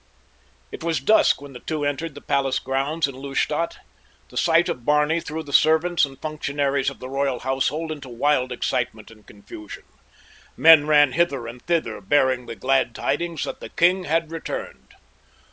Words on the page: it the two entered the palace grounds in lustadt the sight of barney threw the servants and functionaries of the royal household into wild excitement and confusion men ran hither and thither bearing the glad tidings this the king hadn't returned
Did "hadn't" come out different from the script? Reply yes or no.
yes